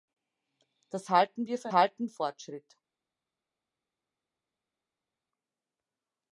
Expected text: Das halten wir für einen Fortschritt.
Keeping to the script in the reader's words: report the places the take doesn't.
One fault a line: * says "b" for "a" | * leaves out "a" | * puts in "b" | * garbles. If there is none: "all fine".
* says "halten" for "einen"